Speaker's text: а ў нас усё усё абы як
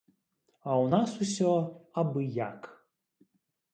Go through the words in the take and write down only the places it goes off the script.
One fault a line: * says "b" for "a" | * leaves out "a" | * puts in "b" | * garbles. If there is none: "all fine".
* leaves out "усё"